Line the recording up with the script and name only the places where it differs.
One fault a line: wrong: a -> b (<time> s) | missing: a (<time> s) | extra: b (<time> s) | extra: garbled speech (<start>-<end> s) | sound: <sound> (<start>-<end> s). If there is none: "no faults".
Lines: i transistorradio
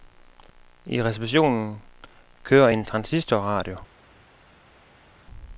extra: receptionen kører en (1.0 s)